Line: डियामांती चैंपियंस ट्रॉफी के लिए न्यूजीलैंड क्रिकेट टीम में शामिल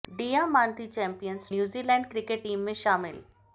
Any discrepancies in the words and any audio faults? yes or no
yes